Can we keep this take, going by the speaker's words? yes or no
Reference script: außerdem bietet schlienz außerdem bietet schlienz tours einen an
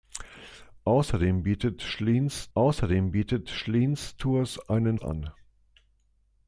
yes